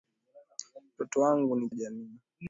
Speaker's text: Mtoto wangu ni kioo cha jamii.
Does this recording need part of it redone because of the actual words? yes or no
yes